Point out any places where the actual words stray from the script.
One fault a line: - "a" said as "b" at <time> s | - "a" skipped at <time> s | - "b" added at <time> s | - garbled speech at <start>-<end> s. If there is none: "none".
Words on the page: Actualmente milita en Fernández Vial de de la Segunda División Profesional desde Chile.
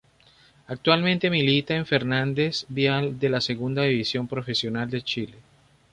- "de" skipped at 3.3 s
- "desde" said as "de" at 4.9 s